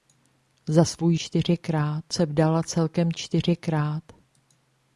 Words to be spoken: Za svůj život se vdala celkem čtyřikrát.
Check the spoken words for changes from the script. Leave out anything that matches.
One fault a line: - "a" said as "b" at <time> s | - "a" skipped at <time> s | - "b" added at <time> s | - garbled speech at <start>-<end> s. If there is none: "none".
- "život" said as "čtyřikrát" at 1.1 s